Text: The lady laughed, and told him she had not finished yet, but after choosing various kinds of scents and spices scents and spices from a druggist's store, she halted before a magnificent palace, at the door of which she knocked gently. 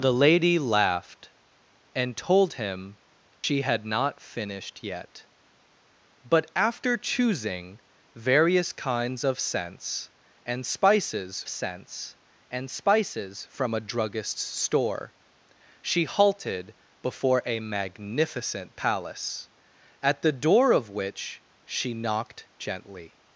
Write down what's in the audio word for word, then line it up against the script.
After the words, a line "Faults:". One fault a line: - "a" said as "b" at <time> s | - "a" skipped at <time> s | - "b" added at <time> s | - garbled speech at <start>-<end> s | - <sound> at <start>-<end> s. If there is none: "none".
The lady laughed, and told him she had not finished yet, but after choosing various kinds of scents and spices scents and spices from a druggist's store, she halted before a magnificent palace, at the door of which she knocked gently.
Faults:
- dropout at 3.3-3.4 s